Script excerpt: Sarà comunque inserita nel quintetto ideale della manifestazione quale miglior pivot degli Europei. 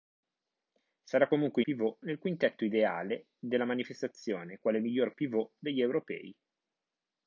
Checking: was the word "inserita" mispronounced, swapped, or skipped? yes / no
yes